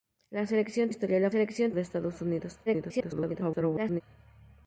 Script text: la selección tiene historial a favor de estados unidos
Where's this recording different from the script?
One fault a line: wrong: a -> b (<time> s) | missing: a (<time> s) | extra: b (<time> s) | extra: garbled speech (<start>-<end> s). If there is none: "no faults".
missing: tiene (0.9 s)
wrong: favor -> selección (1.3 s)
extra: garbled speech (2.7-4.0 s)